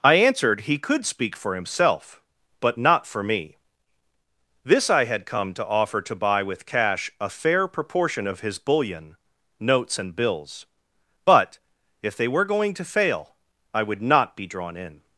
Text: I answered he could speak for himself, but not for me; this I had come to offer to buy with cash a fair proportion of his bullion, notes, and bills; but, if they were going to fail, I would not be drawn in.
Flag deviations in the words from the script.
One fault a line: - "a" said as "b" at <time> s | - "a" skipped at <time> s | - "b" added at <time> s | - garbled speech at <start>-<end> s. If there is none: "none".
none